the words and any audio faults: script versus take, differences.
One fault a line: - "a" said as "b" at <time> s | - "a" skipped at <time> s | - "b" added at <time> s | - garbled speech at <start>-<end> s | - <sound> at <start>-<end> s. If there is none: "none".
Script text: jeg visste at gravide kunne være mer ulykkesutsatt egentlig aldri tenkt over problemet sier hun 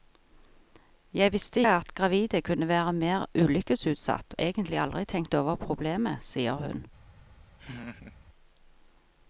- laugh at 7.6-8.2 s